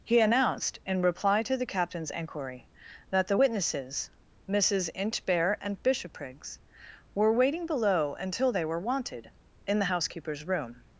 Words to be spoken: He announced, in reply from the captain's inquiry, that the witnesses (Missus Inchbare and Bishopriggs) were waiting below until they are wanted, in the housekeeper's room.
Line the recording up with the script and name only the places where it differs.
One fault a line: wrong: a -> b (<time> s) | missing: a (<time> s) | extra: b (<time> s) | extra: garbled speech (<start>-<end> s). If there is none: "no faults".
wrong: from -> to (1.4 s)
wrong: are -> were (8.7 s)